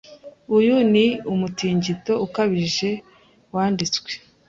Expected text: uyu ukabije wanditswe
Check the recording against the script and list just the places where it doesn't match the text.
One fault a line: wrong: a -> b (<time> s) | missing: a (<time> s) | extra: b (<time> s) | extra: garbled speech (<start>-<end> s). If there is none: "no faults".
extra: ni umutingito (0.9 s)